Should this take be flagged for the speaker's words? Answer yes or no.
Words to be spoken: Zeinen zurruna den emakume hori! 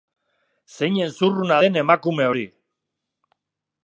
no